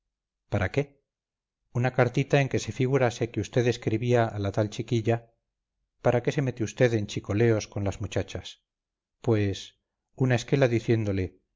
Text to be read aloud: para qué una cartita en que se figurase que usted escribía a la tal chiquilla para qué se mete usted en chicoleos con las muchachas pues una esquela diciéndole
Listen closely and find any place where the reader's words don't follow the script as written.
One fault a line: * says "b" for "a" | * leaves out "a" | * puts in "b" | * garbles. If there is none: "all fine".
all fine